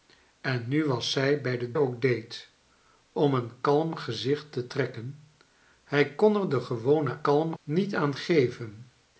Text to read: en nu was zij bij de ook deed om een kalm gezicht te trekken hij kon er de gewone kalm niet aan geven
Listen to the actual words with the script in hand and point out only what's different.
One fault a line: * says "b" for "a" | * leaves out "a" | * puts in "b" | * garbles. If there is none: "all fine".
all fine